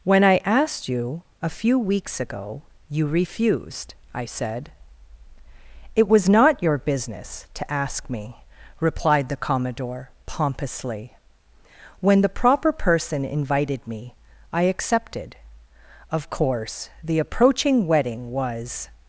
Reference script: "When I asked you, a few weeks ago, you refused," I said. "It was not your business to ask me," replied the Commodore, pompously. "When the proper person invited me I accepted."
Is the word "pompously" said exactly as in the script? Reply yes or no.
yes